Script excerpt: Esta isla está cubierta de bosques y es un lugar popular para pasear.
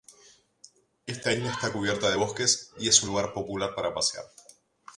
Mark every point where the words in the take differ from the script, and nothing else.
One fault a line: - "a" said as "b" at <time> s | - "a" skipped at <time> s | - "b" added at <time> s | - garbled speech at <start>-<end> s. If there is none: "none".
none